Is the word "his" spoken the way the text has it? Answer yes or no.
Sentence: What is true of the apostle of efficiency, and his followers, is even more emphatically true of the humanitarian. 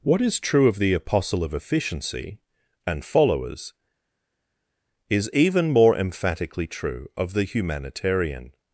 no